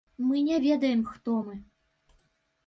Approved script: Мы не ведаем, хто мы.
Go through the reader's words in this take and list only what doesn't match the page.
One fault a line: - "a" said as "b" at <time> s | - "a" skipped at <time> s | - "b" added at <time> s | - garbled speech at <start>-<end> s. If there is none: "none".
none